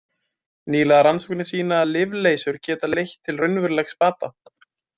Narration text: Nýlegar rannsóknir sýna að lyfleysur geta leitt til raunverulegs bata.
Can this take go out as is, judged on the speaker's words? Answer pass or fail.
pass